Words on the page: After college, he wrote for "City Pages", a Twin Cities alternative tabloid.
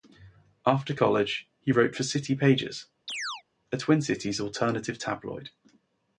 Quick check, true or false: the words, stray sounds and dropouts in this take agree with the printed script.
false